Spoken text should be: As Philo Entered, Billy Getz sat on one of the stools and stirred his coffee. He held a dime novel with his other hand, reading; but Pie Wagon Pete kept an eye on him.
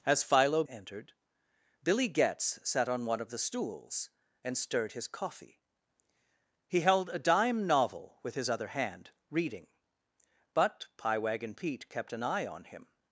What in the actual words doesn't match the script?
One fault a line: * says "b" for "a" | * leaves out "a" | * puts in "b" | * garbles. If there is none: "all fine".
all fine